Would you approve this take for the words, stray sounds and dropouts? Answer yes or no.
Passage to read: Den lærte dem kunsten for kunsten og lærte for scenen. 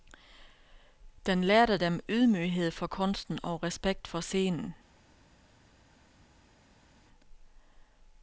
no